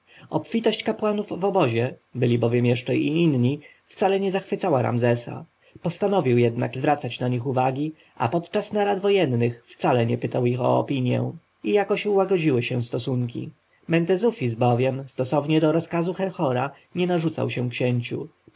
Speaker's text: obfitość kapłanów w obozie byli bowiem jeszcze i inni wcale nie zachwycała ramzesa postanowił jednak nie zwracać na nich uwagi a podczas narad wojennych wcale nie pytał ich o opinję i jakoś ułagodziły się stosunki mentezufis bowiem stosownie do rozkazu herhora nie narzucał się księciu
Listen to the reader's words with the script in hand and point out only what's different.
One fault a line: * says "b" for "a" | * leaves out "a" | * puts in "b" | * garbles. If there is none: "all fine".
* leaves out "nie"